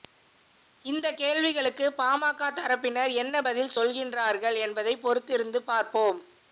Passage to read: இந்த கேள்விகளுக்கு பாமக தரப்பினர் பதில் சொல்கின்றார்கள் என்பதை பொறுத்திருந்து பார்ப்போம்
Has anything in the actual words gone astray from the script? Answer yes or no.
yes